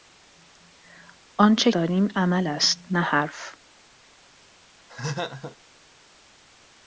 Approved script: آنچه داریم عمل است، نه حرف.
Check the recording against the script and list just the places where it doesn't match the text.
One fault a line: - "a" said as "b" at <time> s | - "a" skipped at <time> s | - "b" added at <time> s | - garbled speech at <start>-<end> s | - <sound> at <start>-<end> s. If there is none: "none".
- laugh at 4.9-5.6 s